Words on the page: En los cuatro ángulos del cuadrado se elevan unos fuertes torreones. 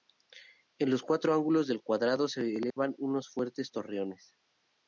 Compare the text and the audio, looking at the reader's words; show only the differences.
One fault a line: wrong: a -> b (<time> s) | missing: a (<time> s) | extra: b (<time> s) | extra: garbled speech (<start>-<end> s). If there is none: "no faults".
no faults